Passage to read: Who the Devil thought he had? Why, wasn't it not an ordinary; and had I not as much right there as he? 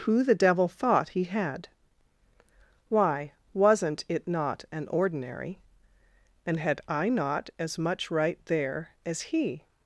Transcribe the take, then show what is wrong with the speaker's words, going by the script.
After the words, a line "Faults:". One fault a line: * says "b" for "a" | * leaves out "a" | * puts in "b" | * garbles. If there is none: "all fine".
Who the Devil thought he had? Why, wasn't it not an ordinary; and had I not as much right there as he?
Faults:
all fine